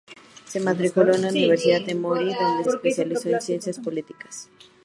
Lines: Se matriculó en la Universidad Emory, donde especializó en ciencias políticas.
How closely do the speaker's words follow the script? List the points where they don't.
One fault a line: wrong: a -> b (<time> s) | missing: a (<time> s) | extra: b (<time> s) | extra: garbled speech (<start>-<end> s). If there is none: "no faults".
no faults